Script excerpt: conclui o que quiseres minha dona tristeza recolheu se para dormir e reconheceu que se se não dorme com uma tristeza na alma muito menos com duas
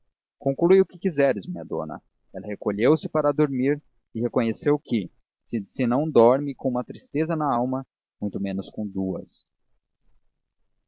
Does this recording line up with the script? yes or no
no